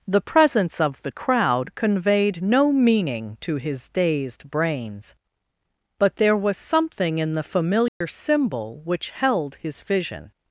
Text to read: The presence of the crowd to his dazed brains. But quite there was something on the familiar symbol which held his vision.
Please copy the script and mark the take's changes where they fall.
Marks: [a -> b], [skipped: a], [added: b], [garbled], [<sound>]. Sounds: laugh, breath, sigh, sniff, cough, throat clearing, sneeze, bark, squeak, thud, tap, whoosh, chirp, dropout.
The presence of the crowd [added: conveyed no meaning] to his dazed brains. But [skipped: quite] there was something [on -> in] the familiar [dropout] symbol which held his vision.